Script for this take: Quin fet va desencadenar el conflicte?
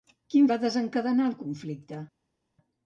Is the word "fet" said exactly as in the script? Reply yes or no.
no